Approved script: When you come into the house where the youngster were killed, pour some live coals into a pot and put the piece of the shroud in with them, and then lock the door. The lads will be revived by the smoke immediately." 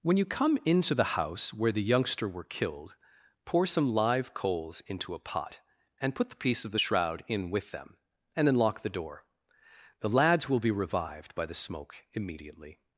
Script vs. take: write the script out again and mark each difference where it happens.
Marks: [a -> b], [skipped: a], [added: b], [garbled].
When you come into the house where the youngster were killed, pour some live coals into a pot and put the piece of the shroud in with them, and then lock the door. The lads will be revived by the smoke immediately."